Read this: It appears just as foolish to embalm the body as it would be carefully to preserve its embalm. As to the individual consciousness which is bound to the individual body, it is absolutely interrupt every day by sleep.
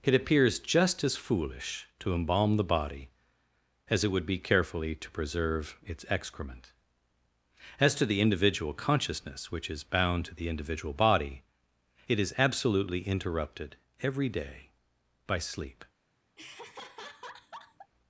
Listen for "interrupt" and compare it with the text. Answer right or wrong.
wrong